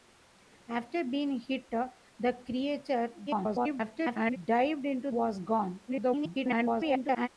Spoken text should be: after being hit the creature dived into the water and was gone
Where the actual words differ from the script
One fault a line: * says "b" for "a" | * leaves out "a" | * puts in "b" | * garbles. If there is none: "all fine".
* garbles
* leaves out "the water and"
* garbles